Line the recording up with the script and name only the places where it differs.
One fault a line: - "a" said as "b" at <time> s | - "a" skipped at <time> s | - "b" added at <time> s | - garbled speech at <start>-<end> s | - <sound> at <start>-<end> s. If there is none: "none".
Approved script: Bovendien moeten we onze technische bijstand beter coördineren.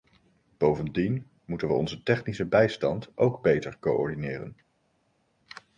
- "ook" added at 3.1 s